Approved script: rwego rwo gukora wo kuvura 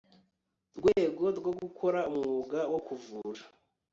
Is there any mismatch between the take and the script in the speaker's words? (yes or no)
yes